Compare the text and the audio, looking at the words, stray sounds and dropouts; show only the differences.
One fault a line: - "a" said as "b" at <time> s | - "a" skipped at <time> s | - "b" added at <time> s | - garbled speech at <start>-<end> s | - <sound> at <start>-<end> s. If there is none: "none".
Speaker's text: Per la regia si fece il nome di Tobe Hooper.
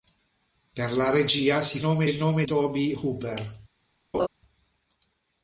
- "fece" said as "nome" at 1.8 s
- "di" skipped at 2.5 s
- laugh at 4.1-4.3 s